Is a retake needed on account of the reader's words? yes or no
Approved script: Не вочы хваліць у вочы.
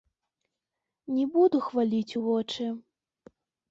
yes